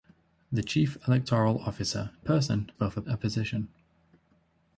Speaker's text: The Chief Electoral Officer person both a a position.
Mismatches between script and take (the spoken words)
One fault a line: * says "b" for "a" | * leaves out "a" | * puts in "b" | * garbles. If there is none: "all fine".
all fine